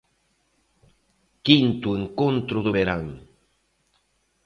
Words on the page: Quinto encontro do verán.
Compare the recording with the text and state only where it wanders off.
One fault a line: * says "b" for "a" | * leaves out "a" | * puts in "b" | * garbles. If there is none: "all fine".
all fine